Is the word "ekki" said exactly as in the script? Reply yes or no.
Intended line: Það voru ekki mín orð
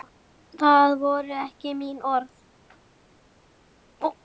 yes